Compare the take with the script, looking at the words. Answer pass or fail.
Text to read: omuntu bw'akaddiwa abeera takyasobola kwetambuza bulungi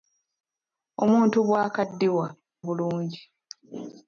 fail